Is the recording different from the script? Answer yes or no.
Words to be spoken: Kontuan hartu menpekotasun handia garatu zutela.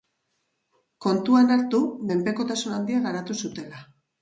no